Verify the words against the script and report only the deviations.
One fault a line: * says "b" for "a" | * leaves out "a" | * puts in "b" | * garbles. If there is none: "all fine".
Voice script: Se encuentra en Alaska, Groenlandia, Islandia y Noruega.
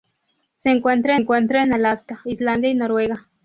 * puts in "encuentra"
* leaves out "Groenlandia"